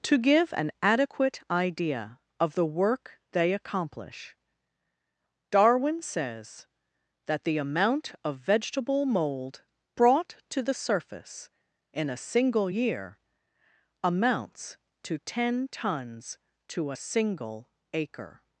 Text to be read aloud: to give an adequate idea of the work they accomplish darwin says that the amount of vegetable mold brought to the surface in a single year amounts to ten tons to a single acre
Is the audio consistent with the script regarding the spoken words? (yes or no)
yes